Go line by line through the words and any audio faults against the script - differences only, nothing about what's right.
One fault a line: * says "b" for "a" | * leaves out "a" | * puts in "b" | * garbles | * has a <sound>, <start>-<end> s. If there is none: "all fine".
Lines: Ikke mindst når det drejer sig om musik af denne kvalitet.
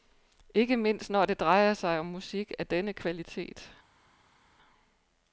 all fine